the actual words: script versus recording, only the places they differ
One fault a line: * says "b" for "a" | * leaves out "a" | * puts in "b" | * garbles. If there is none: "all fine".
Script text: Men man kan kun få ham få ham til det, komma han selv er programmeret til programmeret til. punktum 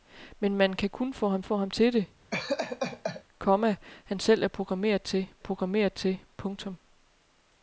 all fine